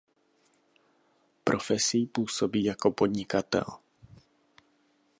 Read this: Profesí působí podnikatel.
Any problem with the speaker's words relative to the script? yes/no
yes